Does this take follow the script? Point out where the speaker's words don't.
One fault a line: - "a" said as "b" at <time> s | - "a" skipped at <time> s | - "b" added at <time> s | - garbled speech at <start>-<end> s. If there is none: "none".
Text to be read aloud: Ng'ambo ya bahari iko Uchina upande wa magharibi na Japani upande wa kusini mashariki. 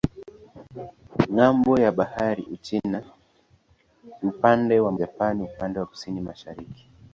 - "iko" skipped at 2.4 s
- "magharibi na" skipped at 4.9 s